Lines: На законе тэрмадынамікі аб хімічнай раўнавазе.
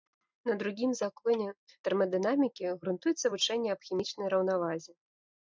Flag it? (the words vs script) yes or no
yes